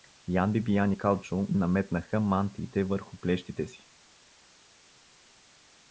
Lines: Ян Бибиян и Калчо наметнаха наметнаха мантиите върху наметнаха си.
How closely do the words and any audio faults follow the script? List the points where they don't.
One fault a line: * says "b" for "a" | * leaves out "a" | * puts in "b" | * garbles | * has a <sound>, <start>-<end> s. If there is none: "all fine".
* leaves out "наметнаха"
* says "плещите" for "наметнаха"